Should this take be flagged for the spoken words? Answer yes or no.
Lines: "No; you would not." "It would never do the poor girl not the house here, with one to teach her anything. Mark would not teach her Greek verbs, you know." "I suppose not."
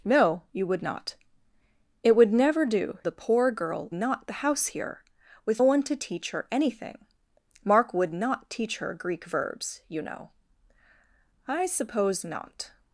no